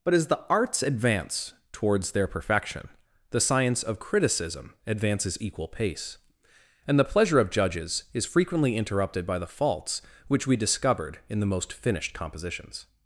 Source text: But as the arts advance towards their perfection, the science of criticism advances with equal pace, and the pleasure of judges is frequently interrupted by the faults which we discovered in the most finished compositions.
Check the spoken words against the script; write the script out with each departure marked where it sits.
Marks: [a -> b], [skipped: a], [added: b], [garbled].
But as the arts advance towards their perfection, the science of criticism advances [skipped: with] equal pace, and the pleasure of judges is frequently interrupted by the faults which we discovered in the most finished compositions.